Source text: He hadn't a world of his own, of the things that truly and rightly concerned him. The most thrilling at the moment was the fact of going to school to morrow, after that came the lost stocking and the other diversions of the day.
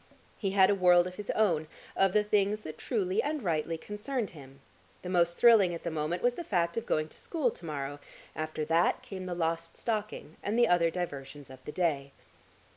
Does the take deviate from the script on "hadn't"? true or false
true